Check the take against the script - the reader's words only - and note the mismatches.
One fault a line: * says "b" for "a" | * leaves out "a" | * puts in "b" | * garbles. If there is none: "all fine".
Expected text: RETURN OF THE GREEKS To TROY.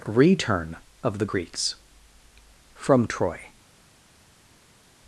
* says "FROM" for "To"